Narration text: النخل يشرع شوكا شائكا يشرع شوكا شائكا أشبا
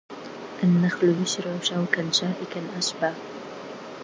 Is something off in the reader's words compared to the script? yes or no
yes